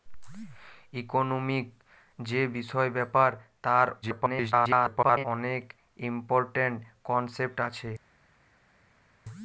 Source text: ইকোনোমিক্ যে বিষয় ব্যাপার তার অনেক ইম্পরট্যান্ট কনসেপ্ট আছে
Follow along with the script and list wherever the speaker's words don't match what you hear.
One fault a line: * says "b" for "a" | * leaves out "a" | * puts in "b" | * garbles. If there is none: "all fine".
* garbles